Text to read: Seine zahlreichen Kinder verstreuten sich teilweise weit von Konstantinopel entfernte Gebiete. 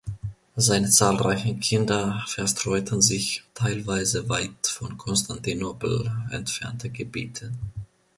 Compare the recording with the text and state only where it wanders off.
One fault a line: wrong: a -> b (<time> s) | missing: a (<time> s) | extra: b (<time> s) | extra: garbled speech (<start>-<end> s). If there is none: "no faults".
no faults